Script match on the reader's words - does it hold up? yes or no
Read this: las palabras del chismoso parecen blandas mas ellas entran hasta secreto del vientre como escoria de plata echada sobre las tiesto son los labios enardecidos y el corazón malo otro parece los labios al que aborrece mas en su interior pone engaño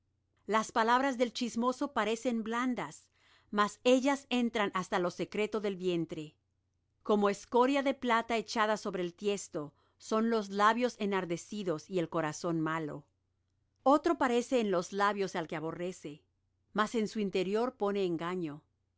no